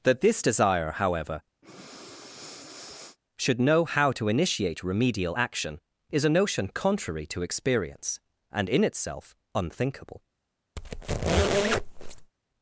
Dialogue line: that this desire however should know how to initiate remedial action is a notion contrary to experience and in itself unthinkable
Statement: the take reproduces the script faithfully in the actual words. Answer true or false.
true